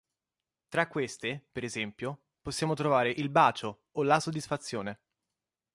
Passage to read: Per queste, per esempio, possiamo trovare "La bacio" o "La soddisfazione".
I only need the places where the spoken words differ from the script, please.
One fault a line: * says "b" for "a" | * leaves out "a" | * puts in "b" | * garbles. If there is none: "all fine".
* says "Tra" for "Per"
* says "Il" for "La"